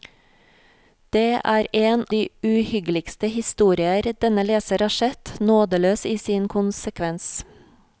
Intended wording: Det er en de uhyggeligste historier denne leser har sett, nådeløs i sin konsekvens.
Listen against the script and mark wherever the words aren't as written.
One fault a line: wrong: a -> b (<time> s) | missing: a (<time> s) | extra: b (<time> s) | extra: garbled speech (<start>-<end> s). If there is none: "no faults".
no faults